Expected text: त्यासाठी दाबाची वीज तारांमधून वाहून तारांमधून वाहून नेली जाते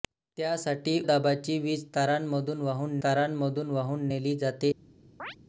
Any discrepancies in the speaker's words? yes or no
no